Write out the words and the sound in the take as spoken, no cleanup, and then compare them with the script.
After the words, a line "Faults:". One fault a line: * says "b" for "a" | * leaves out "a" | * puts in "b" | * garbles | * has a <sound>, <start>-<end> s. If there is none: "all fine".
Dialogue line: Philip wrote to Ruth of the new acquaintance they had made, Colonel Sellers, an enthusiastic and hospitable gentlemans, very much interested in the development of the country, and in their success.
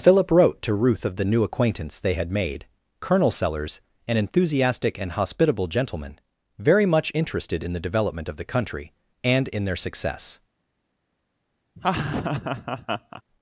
Philip wrote to Ruth of the new acquaintance they had made, Colonel Sellers, an enthusiastic and hospitable gentleman, very much interested in the development of the country, and in their success.
Faults:
* says "gentleman" for "gentlemans"
* has a laugh, 11.8-13.2 s